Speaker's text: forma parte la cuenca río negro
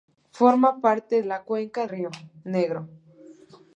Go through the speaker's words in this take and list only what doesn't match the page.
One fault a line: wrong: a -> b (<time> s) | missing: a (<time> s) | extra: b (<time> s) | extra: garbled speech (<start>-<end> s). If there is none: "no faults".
no faults